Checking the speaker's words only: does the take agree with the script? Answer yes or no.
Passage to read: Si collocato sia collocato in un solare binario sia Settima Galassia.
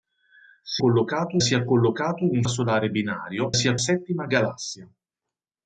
yes